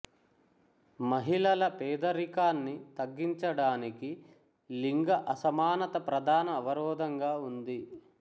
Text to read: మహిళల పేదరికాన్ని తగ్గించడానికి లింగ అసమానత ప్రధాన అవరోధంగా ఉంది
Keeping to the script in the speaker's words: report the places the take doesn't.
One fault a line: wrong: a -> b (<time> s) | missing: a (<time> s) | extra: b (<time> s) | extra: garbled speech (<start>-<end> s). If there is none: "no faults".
no faults